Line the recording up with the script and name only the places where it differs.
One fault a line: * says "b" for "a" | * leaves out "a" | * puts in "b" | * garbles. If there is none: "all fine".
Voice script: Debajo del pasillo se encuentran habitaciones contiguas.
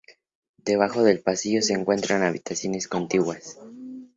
all fine